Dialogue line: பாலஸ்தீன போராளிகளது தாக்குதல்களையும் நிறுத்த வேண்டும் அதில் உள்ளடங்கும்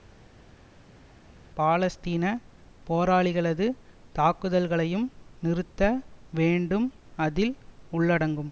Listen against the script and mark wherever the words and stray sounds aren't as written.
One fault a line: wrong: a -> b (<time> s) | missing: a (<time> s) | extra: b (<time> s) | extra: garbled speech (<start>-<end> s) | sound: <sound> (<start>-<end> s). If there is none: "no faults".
no faults